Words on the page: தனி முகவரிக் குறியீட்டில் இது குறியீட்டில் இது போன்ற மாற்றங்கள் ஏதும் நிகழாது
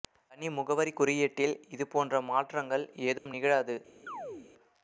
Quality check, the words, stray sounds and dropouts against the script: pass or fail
fail